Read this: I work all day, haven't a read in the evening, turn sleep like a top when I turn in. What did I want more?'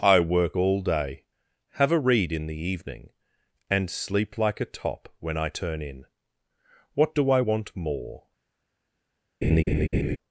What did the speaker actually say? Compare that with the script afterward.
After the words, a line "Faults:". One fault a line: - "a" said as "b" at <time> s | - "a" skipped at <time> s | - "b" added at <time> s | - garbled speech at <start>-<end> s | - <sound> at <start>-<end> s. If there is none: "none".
I work all day, have a read in the evening, and sleep like a top when I turn in. What do I want more?'
Faults:
- "haven't" said as "have" at 1.7 s
- "turn" said as "and" at 3.7 s
- "did" said as "do" at 7.1 s
- laugh at 9.4-10.2 s